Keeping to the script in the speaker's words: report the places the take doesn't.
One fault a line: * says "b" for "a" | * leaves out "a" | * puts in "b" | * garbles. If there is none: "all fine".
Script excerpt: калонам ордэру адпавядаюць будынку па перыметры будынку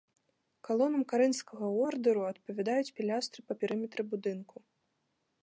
* puts in "карынфскага"
* says "пілястры" for "будынку"